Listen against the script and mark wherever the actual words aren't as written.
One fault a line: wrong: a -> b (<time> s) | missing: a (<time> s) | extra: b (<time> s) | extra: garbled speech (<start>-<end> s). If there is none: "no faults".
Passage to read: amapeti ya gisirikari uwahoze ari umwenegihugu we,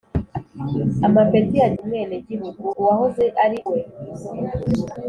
wrong: gisirikari -> umwenegihugu (1.8 s)
missing: umwenegihugu (3.6 s)